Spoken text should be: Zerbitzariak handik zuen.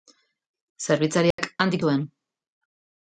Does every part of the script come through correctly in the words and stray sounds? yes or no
no